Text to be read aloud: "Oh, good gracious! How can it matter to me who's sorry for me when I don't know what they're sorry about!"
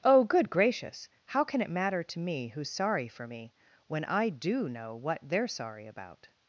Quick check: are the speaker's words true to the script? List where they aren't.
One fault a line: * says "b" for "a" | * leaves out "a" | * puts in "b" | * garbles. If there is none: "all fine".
* says "do" for "don't"